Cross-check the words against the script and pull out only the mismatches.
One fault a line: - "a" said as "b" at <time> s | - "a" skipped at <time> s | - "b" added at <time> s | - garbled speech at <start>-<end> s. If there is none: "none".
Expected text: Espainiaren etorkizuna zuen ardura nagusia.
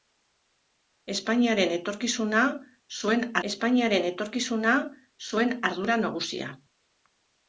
- "espainiaren etorkizuna zuen" added at 3.5 s